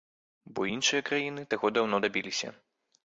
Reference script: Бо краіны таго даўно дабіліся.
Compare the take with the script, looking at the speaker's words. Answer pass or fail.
fail